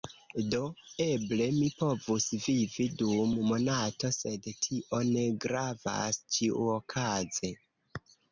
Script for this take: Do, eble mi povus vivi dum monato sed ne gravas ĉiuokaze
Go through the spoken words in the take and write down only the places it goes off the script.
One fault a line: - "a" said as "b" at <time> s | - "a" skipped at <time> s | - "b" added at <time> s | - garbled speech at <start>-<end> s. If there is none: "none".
- "tio" added at 4.7 s